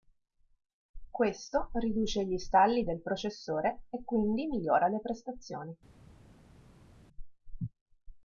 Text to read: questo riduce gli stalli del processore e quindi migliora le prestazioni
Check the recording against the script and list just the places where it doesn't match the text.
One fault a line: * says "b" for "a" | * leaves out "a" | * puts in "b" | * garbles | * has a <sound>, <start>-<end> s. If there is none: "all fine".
all fine